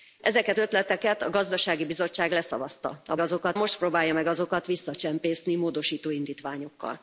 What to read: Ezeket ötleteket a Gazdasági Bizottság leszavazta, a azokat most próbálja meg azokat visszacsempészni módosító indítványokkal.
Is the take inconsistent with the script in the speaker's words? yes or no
no